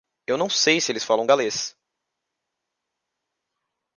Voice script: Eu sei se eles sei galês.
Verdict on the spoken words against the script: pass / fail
fail